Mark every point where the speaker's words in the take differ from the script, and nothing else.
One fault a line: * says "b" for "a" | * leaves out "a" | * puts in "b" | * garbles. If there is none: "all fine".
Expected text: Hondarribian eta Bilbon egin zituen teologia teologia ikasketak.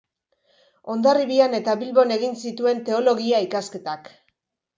* leaves out "teologia"